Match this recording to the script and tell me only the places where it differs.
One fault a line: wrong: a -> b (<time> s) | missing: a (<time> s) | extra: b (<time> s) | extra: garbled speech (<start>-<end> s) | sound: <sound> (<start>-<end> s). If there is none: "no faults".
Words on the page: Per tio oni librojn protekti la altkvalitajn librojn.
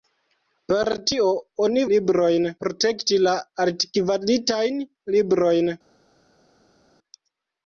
no faults